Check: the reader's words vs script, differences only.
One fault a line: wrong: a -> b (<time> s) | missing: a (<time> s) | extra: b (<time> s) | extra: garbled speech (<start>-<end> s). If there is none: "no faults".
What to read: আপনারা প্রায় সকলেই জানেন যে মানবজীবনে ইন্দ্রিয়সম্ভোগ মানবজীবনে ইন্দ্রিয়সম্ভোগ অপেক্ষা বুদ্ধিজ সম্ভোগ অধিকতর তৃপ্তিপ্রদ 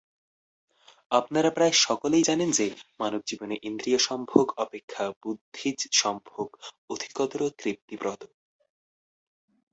missing: মানবজীবনে ইন্দ্রিয়সম্ভোগ (4.5 s)